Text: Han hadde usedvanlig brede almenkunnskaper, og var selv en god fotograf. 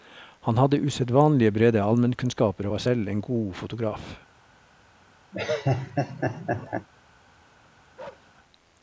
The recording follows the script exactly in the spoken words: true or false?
true